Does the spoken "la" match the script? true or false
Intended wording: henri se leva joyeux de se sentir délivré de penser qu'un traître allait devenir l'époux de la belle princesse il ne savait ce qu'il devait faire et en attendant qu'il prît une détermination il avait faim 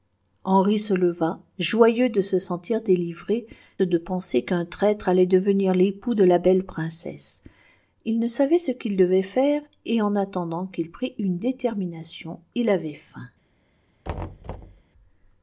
true